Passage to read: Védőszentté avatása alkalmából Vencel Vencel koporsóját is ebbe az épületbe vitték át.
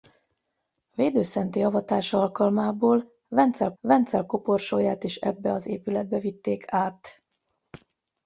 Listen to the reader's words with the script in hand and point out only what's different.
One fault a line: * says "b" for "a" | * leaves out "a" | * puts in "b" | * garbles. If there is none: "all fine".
all fine